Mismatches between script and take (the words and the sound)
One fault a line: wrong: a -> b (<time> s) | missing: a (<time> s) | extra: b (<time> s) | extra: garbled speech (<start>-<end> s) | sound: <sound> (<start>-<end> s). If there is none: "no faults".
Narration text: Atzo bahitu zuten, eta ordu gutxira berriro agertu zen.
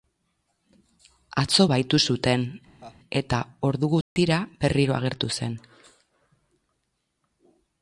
sound: laugh (2.8-3.0 s)
sound: dropout (4.0-4.2 s)